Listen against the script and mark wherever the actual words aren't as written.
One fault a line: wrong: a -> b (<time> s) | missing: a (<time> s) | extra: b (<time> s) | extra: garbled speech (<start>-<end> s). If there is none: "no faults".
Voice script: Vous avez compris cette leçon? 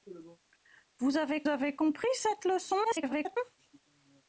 extra: avez (1.5 s)
extra: garbled speech (2.8-3.4 s)